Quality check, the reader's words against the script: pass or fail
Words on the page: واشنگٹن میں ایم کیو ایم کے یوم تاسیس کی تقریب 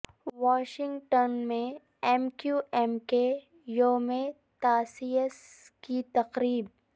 pass